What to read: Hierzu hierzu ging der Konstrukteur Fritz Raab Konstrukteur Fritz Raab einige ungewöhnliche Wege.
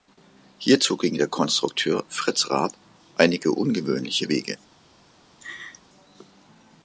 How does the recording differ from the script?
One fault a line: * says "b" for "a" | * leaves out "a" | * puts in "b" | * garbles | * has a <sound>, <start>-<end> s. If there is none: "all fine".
* leaves out "hierzu"
* leaves out "Konstrukteur Fritz Raab"
* has a laugh, 5.4-5.8 s